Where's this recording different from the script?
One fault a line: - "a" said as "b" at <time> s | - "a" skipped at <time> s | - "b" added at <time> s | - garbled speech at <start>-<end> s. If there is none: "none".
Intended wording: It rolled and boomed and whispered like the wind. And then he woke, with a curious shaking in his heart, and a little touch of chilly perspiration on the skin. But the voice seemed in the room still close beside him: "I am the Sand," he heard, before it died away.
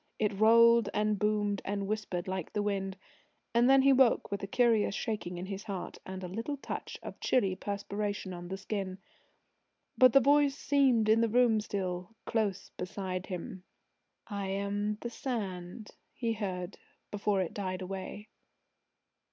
none